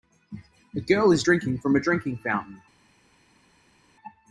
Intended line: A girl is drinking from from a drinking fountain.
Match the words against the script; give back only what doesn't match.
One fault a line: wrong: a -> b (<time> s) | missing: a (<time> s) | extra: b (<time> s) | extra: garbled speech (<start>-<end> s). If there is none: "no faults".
missing: from (1.8 s)